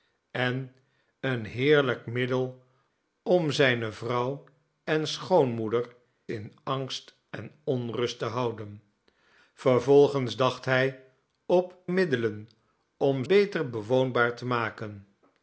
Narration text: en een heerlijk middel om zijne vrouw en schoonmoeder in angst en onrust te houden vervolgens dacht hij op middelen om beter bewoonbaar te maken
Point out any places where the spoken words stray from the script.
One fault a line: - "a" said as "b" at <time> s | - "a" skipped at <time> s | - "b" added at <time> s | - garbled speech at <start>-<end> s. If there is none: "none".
none